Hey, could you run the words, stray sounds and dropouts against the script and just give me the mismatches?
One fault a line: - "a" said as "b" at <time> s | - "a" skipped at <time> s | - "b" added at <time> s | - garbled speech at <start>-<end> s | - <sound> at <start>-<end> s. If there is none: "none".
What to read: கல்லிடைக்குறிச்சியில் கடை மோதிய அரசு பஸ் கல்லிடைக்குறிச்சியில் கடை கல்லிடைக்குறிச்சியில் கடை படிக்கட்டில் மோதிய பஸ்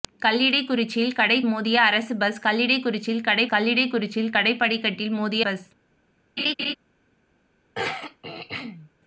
- laugh at 6.4-6.8 s
- throat clearing at 7.7-8.9 s